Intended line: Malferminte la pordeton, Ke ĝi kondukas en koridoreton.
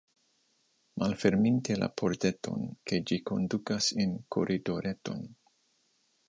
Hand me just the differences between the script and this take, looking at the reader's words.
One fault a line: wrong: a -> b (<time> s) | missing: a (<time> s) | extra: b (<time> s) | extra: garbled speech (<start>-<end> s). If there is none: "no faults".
no faults